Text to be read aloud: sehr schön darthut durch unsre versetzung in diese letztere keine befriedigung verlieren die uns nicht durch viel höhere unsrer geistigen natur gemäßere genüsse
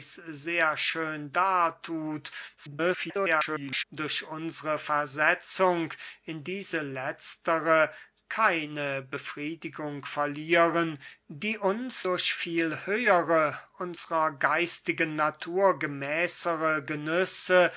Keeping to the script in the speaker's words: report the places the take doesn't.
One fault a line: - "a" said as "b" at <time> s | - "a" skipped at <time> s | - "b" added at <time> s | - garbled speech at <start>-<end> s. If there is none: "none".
- garbled speech at 2.6-3.8 s
- "nicht" skipped at 12.0 s